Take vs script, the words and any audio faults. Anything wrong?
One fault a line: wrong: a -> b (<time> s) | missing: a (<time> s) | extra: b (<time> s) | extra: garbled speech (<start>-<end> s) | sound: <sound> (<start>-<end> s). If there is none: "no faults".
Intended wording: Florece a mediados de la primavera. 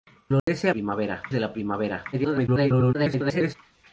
sound: dropout (0.4-0.5 s)
wrong: mediados -> primavera (0.7 s)
extra: garbled speech (2.1-3.6 s)